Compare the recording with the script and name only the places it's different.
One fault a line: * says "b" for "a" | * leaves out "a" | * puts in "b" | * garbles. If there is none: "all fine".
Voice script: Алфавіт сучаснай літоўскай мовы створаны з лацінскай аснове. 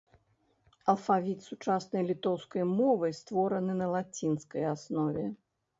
* says "на" for "з"